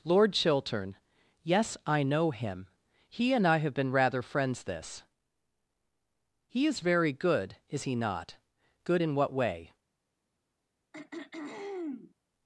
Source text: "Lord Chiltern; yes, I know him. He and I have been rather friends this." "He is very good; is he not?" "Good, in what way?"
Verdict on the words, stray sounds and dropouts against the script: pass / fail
fail